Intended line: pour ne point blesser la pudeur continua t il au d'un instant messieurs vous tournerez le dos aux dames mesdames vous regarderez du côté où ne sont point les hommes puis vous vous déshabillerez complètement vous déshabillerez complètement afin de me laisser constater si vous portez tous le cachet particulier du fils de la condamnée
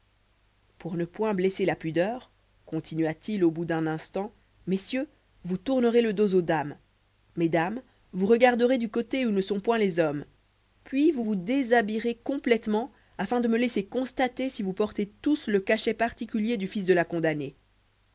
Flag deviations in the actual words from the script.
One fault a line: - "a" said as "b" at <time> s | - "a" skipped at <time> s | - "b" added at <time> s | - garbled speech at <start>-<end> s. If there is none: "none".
- "bout" added at 3.5 s
- "vous déshabillerez complètement" skipped at 12.9 s